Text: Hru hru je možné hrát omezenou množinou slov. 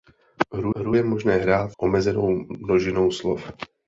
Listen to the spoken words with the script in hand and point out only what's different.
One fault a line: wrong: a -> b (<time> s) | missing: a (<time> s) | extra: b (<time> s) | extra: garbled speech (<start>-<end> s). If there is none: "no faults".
no faults